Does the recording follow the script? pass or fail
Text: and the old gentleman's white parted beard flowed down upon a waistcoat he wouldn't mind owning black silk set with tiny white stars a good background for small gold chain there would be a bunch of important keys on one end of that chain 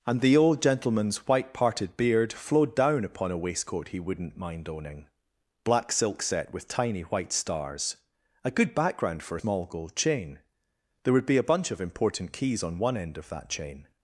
pass